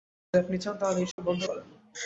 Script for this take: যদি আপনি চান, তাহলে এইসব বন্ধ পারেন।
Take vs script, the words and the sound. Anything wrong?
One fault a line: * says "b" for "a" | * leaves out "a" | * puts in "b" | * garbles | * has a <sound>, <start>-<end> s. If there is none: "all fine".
* has a dropout, 1.1-1.2 s